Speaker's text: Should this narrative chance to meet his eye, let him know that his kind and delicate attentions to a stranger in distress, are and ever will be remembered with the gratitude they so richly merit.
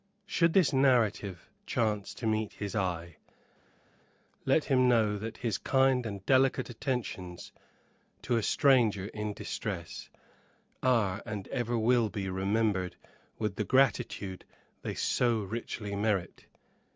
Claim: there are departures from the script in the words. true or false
false